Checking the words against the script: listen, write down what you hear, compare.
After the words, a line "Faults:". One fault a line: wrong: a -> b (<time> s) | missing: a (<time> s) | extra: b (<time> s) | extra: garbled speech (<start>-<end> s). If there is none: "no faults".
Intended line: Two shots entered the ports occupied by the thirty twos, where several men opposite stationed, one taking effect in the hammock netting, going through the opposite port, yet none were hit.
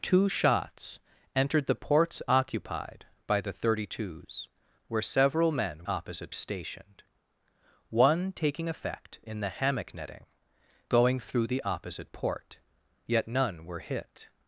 Two shots entered the ports occupied by the thirty twos, where several men opposite stationed, one taking effect in the hammock netting, going through the opposite port, yet none were hit.
Faults:
no faults